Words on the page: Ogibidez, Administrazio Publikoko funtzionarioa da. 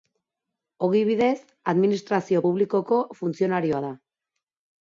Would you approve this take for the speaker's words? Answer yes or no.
yes